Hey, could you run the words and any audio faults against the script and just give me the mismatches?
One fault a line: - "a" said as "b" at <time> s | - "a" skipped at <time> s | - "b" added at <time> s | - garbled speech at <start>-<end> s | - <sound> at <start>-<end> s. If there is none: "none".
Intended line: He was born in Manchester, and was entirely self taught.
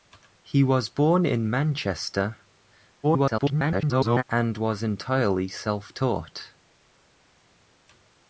- garbled speech at 3.0-4.2 s